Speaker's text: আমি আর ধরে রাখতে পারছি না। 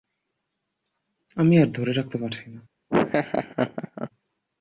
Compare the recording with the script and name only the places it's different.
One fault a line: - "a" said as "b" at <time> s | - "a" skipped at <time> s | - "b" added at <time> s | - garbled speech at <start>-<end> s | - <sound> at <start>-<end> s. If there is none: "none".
- laugh at 2.9-4.1 s